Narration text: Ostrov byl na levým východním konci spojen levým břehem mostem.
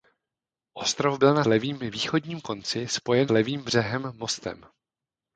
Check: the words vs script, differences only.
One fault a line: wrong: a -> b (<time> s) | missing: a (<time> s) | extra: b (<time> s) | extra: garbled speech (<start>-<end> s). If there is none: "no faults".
no faults